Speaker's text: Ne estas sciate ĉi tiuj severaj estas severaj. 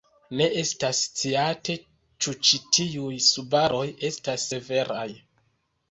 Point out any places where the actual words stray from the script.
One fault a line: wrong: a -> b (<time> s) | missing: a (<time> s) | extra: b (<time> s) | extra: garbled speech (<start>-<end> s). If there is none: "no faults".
extra: ĉu (2.2 s)
wrong: severaj -> subaroj (3.3 s)